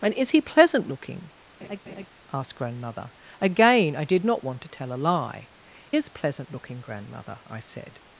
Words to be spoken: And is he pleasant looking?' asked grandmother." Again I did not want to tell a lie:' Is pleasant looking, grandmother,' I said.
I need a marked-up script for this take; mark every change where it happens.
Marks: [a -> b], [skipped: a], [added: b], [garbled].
And is he pleasant looking?' asked grandmother." Again I did not want to tell a lie:' Is pleasant looking, grandmother,' I said.